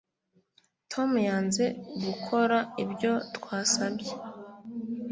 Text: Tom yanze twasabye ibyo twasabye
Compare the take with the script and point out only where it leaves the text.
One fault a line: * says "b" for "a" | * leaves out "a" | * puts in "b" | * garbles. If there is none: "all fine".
* says "gukora" for "twasabye"